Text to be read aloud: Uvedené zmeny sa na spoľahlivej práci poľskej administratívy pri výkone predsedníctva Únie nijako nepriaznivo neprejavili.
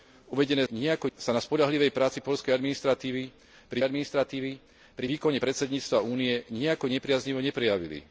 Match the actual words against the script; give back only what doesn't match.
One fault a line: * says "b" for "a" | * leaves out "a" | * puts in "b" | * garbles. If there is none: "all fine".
* says "nijako" for "zmeny"
* puts in "administratívy pri"